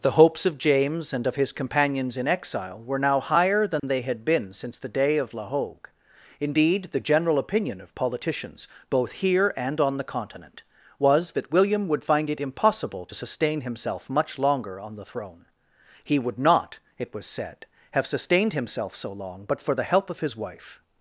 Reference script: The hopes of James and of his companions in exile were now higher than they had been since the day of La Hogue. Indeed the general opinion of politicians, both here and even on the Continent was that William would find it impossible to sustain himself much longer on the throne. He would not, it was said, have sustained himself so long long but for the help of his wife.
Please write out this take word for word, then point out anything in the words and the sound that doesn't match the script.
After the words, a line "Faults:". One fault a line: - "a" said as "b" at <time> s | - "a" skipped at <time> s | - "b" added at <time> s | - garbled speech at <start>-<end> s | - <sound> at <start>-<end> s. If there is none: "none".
The hopes of James and of his companions in exile were now higher than they had been since the day of La Hogue. Indeed the general opinion of politicians, both here and on the Continent was that William would find it impossible to sustain himself much longer on the throne. He would not, it was said, have sustained himself so long but for the help of his wife.
Faults:
- dropout at 3.8-3.8 s
- "even" skipped at 9.8 s
- "long" skipped at 19.4 s